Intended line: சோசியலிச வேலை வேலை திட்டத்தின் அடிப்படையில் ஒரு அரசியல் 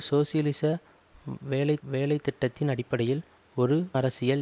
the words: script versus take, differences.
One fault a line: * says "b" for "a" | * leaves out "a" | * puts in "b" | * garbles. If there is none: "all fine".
all fine